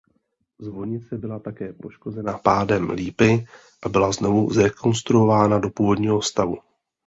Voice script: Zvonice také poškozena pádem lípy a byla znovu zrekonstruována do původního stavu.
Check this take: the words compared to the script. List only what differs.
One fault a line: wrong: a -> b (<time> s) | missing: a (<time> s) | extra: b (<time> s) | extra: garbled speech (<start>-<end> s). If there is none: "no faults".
extra: byla (1.2 s)